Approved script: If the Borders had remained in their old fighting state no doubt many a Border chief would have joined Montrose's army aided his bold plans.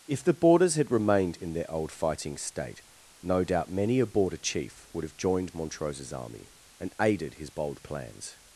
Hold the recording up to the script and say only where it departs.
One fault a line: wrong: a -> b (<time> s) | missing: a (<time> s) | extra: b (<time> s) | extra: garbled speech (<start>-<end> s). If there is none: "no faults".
extra: and (6.8 s)